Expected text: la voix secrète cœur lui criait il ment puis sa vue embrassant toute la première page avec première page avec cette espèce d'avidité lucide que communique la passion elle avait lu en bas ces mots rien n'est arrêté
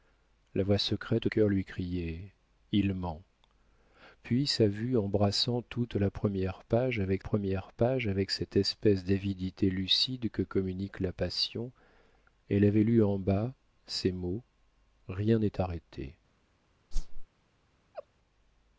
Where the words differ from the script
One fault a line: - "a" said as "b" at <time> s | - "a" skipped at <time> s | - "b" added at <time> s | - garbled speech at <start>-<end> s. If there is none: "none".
none